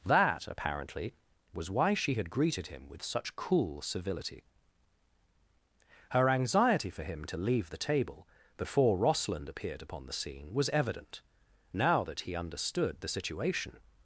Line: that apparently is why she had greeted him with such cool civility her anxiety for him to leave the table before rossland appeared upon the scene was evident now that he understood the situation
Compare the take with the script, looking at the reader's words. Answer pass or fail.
fail